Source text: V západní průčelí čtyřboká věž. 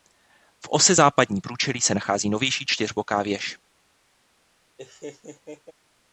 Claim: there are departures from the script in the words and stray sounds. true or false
true